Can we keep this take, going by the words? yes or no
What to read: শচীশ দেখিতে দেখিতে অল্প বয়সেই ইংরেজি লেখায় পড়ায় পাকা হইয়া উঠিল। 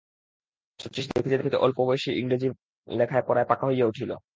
yes